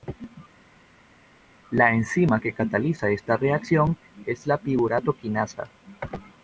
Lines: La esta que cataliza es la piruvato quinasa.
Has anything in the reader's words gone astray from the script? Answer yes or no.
yes